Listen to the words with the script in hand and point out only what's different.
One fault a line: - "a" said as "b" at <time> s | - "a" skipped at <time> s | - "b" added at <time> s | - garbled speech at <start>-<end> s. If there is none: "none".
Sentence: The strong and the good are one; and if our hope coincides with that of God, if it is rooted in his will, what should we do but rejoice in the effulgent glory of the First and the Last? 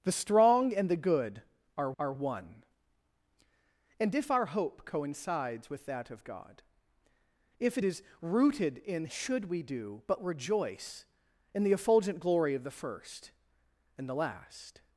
- "are" added at 2.0 s
- "his will what" skipped at 9.1 s